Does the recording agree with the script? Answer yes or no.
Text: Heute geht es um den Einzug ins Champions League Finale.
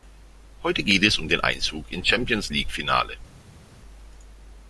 yes